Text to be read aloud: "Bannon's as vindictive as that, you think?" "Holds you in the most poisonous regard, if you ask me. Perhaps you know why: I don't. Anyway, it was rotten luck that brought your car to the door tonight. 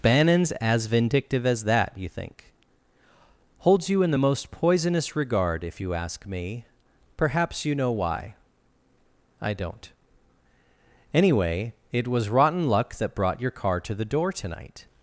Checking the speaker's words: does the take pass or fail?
pass